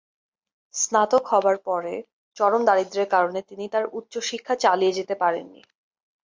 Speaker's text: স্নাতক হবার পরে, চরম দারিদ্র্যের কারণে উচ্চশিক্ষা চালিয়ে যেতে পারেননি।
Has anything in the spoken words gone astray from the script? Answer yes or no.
yes